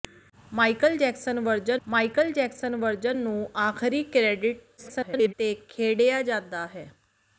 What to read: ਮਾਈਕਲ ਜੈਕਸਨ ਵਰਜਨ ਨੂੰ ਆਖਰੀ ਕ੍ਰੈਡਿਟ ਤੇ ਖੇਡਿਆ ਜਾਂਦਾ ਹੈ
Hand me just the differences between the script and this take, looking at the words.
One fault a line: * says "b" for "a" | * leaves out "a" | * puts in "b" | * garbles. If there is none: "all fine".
* puts in "ਮਾਈਕਲ ਜੈਕਸਨ ਵਰਜਨ"
* garbles